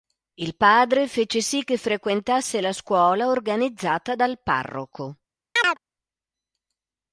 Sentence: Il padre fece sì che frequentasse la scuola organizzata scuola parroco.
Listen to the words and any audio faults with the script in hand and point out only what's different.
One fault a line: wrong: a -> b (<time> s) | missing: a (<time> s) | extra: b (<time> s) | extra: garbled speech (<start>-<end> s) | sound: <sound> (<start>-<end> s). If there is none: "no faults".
wrong: scuola -> dal (4.2 s)
sound: chirp (5.6-5.8 s)